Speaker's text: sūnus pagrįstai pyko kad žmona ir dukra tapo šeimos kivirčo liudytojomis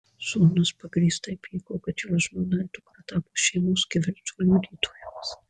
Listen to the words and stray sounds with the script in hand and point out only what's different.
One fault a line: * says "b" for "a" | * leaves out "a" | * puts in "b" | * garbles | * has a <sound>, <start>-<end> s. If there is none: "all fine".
* puts in "jo"